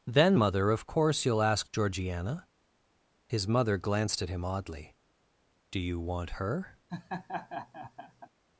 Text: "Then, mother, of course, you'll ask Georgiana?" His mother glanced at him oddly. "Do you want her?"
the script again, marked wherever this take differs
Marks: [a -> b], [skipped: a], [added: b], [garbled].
"Then, mother, of course, you'll ask Georgiana?" His mother glanced at him oddly. "Do you want her?"